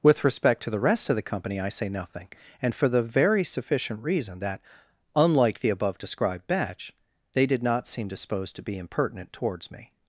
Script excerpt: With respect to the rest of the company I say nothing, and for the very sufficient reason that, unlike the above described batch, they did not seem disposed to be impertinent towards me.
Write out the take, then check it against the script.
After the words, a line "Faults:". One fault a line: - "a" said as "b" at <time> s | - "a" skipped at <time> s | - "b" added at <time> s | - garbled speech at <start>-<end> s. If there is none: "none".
With respect to the rest of the company I say nothing, and for the very sufficient reason that, unlike the above described batch, they did not seem disposed to be impertinent towards me.
Faults:
none